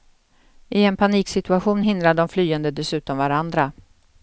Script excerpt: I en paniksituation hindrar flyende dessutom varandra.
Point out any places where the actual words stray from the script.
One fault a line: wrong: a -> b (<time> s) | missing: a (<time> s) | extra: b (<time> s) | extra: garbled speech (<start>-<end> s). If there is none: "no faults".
extra: de (2.2 s)